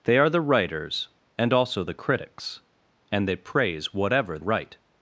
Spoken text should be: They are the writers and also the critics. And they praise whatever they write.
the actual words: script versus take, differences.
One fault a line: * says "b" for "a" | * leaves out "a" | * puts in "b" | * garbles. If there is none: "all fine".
* leaves out "they"